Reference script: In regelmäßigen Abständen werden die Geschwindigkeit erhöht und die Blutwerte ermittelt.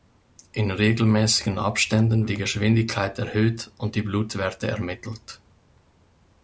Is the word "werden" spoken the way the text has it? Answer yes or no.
no